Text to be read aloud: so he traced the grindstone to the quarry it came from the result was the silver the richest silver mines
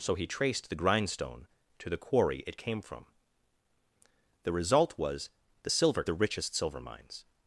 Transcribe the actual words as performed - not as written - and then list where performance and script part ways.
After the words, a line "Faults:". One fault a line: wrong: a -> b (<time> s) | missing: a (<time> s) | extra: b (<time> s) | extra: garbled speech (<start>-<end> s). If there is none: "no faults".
so he traced the grindstone to the quarry it came from the result was the silver the richest silver mines
Faults:
no faults